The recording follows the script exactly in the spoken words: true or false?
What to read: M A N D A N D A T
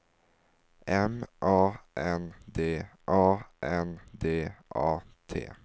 true